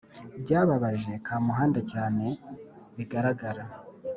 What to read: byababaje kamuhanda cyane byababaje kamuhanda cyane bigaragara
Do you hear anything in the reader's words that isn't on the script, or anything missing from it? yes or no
yes